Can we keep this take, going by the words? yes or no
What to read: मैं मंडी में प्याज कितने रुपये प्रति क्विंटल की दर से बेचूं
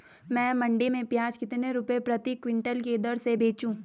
yes